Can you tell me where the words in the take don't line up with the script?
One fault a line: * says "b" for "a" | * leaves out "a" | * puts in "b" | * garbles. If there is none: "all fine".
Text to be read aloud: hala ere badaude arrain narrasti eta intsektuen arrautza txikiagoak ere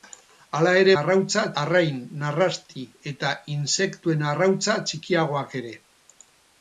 * says "arrautza" for "badaude"